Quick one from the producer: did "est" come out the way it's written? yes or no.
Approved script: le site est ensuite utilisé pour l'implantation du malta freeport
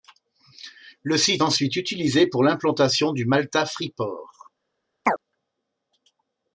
no